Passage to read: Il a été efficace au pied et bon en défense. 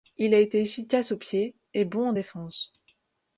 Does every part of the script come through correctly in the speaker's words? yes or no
yes